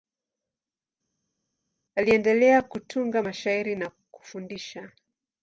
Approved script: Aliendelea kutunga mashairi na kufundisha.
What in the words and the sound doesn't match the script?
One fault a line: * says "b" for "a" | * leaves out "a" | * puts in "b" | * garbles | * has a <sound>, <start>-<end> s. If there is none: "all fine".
all fine